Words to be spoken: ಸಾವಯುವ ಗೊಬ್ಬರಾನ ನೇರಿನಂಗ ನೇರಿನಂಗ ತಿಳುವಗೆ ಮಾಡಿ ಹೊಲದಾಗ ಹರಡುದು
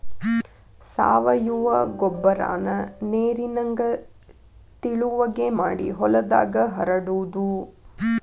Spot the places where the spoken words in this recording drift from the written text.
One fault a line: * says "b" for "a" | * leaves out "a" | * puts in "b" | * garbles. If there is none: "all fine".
* leaves out "ನೇರಿನಂಗ"